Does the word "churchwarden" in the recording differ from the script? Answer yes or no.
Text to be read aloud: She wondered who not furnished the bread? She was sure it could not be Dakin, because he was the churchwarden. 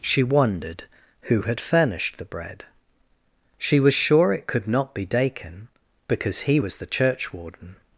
no